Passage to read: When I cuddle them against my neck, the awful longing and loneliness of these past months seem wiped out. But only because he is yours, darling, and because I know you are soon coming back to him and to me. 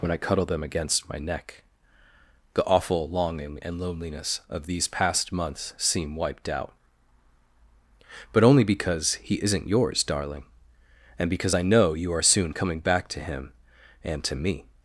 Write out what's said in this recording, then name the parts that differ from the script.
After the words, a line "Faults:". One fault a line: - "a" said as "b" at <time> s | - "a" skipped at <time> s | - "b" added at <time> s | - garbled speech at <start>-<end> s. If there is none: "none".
When I cuddle them against my neck, the awful longing and loneliness of these past months seem wiped out. But only because he isn't yours, darling, and because I know you are soon coming back to him and to me.
Faults:
- "is" said as "isn't" at 9.4 s